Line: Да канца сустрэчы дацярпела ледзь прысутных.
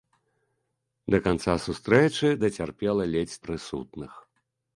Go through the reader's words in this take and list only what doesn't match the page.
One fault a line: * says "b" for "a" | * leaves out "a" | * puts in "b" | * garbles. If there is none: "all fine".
all fine